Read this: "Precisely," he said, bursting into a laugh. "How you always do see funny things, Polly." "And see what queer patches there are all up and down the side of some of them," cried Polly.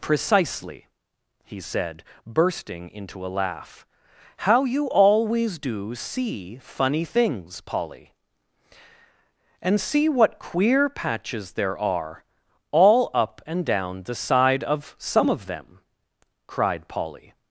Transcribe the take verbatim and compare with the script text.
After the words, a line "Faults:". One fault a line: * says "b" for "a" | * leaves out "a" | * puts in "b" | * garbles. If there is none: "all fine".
"Precisely," he said, bursting into a laugh. "How you always do see funny things, Polly." "And see what queer patches there are all up and down the side of some of them," cried Polly.
Faults:
all fine